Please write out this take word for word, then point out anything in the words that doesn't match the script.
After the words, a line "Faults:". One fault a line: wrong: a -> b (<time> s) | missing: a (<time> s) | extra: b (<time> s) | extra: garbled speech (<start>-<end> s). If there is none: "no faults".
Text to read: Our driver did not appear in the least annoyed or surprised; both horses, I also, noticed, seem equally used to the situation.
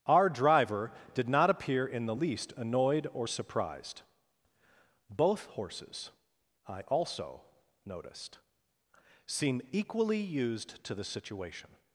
Our driver did not appear in the least annoyed or surprised; both horses, I also, noticed, seem equally used to the situation.
Faults:
no faults